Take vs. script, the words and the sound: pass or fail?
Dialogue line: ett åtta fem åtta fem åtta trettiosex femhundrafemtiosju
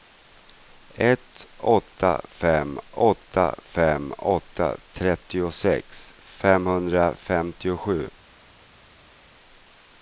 pass